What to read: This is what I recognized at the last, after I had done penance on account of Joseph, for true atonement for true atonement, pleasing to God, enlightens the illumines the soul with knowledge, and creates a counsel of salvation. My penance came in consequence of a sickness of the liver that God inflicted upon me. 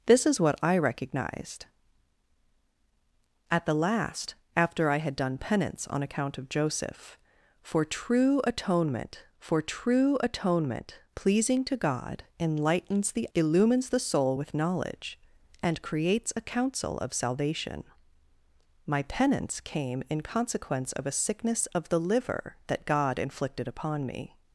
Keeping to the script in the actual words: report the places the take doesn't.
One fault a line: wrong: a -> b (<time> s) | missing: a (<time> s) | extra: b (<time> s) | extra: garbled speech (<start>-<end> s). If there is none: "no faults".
no faults